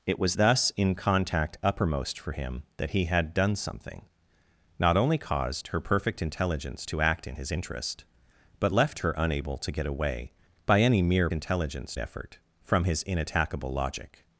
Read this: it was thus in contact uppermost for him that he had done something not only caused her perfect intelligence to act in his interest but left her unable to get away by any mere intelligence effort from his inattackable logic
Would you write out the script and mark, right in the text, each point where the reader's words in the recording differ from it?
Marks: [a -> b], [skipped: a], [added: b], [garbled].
it was thus in contact uppermost for him that he had done something not only caused her perfect intelligence to act in his interest but left her unable to get away by any mere intelligence effort from his inattackable logic